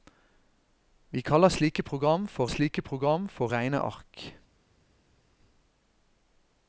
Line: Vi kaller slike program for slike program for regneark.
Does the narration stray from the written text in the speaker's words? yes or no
no